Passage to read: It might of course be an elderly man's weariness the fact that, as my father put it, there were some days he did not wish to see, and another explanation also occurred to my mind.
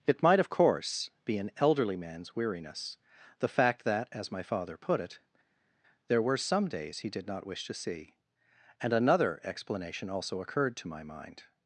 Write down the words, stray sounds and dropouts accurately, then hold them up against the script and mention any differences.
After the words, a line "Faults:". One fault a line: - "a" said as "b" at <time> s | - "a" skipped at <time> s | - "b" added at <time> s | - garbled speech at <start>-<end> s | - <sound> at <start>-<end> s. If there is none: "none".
It might of course be an elderly man's weariness the fact that, as my father put it, there were some days he did not wish to see, and another explanation also occurred to my mind.
Faults:
none